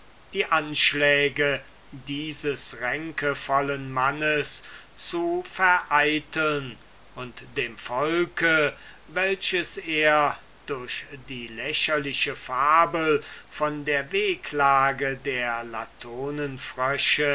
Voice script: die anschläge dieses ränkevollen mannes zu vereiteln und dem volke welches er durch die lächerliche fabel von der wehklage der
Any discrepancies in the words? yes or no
no